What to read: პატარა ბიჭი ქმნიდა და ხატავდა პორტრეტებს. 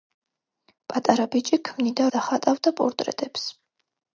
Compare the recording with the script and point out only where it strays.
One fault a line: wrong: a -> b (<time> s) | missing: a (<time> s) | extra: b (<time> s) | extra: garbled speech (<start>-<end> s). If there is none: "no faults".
no faults